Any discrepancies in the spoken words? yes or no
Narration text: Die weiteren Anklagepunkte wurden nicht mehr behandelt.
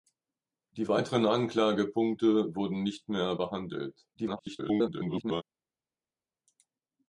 yes